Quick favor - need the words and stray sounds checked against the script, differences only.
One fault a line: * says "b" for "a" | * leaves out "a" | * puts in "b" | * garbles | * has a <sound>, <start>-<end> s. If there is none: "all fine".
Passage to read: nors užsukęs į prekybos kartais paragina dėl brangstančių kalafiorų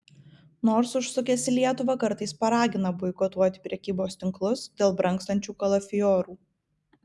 * says "lietuvą" for "prekybos"
* puts in "boikotuoti prekybos tinklus"